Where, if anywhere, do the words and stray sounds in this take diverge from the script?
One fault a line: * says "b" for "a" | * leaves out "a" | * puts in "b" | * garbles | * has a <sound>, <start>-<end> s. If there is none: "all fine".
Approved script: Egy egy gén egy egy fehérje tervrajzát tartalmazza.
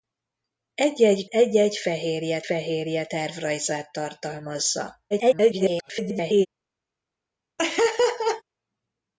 * says "egy" for "gén"
* says "fehérje" for "egy"
* garbles
* has a laugh, 7.6-8.4 s